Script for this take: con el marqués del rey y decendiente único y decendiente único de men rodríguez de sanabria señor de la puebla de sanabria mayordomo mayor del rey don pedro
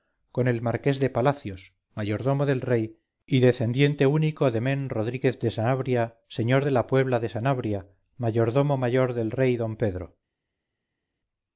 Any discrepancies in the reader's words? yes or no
yes